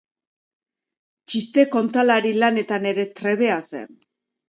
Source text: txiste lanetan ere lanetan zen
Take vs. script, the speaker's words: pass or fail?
fail